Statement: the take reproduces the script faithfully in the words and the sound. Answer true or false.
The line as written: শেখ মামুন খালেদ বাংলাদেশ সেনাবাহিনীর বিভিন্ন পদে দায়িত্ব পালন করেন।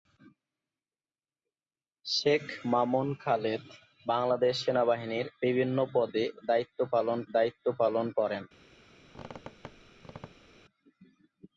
false